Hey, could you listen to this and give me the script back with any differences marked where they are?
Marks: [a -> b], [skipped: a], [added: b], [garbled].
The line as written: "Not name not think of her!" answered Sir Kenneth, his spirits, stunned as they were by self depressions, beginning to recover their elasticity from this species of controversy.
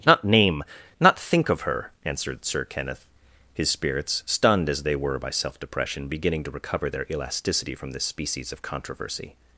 "Not name not think of her!" answered Sir Kenneth, his spirits, stunned as they were by self [depressions, -> depression] beginning to recover their elasticity from this species of controversy.